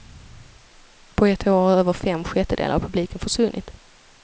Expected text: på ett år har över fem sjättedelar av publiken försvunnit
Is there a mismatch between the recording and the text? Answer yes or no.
no